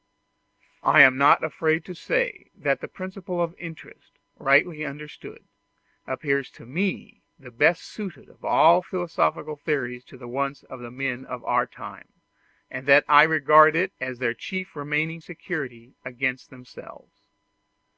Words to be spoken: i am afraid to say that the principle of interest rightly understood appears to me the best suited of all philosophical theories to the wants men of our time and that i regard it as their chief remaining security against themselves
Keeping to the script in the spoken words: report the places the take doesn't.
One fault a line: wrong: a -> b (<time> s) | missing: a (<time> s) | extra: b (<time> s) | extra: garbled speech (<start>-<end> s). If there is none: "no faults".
extra: not (1.1 s)
extra: of the (10.6 s)